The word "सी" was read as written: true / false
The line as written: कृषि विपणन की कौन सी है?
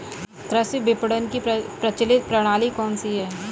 true